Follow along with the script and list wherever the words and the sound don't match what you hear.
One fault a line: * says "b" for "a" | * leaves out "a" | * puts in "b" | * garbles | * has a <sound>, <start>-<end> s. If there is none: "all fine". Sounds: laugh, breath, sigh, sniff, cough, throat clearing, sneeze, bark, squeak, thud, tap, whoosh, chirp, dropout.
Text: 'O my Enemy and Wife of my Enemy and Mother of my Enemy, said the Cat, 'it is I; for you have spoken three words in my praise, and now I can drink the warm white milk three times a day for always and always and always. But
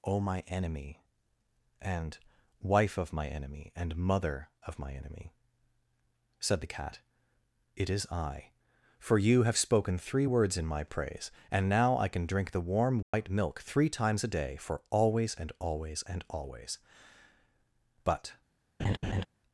* has a dropout, 13.0-13.1 s
* has a laugh, 18.8-19.3 s